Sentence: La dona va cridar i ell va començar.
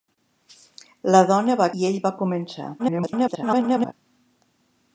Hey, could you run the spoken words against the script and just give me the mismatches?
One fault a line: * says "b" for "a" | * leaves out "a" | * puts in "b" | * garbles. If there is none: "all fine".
* leaves out "cridar"
* garbles